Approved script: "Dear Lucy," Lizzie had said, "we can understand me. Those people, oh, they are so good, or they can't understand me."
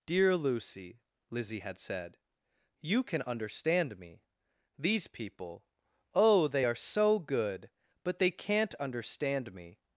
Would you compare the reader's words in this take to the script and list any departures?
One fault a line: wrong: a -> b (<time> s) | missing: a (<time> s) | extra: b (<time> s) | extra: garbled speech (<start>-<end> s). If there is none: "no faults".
wrong: we -> you (2.8 s)
wrong: Those -> These (4.8 s)
wrong: or -> but (8.0 s)